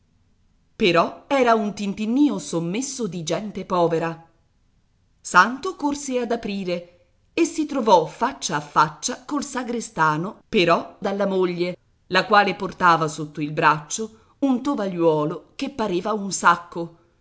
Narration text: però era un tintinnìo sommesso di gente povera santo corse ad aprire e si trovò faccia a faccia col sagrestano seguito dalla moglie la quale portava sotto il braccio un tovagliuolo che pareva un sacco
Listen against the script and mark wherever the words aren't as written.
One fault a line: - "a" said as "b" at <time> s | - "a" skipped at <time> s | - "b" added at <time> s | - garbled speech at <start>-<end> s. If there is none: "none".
- "seguito" said as "però" at 10.5 s